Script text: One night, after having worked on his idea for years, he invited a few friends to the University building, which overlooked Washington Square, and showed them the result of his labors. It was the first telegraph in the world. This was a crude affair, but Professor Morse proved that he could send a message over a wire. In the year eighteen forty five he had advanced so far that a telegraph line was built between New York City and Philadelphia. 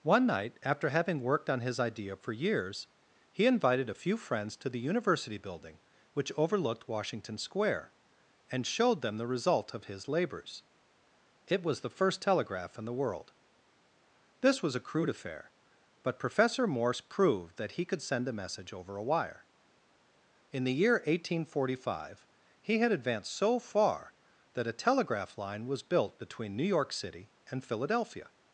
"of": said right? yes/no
yes